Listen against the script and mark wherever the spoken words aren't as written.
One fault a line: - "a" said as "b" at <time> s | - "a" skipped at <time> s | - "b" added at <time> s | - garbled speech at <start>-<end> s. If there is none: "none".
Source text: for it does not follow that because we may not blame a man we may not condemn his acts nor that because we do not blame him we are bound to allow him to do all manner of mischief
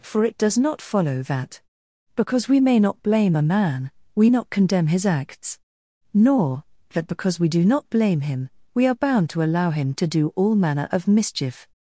- "may" skipped at 4.3 s